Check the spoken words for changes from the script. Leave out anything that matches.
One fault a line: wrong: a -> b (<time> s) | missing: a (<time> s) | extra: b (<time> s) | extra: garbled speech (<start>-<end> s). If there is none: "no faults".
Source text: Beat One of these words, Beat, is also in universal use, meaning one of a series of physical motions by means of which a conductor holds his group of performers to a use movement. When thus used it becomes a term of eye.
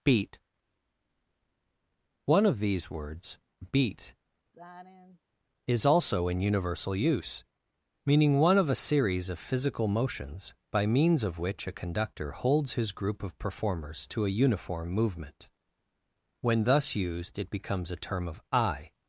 wrong: use -> uniform (14.3 s)